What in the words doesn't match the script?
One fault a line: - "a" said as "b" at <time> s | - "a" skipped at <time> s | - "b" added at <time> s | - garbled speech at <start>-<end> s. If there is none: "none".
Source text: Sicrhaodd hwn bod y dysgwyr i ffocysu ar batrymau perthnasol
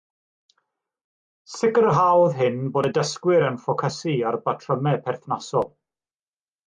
- "hwn" said as "hyn" at 2.4 s
- "i" said as "yn" at 3.5 s